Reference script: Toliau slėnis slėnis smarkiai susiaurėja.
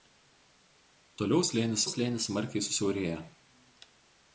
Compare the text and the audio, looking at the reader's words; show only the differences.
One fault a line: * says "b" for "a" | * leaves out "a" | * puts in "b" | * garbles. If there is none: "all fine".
all fine